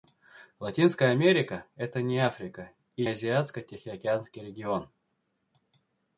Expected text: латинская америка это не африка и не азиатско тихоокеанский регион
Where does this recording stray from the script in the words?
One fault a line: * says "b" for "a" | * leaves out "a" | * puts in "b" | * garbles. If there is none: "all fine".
* leaves out "не"